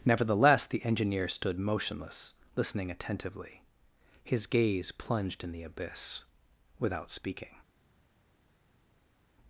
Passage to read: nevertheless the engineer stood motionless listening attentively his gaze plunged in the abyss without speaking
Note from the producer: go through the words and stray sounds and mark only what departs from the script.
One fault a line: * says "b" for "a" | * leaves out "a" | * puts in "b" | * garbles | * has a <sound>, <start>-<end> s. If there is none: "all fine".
all fine